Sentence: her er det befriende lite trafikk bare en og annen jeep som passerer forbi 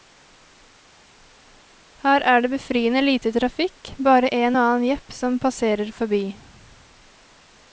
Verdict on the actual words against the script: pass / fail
pass